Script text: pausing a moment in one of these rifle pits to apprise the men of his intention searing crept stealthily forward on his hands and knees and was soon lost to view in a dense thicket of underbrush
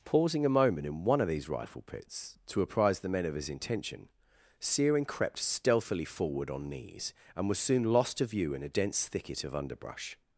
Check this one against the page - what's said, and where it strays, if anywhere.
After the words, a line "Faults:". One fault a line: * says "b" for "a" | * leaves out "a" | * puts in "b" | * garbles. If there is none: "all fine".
pausing a moment in one of these rifle pits to apprise the men of his intention searing crept stealthily forward on knees and was soon lost to view in a dense thicket of underbrush
Faults:
* leaves out "his hands and"